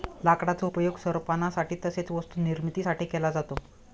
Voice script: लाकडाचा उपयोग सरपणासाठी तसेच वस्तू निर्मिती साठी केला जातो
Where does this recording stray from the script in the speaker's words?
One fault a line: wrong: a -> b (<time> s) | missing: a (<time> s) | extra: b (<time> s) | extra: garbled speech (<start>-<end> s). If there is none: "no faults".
no faults